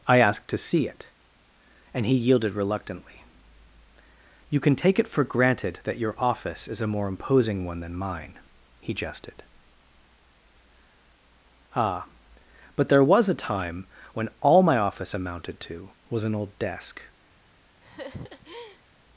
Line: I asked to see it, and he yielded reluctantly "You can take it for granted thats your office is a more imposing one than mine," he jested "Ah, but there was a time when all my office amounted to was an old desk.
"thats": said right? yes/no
no